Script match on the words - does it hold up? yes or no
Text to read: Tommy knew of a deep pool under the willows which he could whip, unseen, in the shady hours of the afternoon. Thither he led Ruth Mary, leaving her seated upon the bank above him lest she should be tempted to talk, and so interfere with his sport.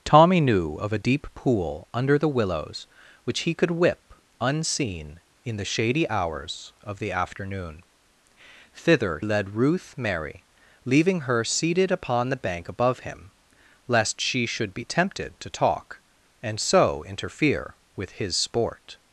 no